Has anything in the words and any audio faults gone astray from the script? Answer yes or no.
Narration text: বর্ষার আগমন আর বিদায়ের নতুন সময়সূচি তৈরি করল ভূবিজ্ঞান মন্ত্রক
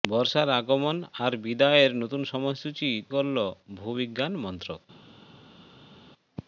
yes